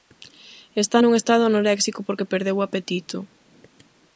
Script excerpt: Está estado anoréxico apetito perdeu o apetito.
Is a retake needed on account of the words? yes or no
yes